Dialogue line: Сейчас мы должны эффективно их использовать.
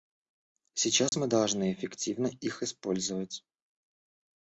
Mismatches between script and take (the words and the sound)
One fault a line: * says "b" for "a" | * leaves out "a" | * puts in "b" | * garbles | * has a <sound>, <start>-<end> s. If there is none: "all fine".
* has a dropout, 1.1-1.1 s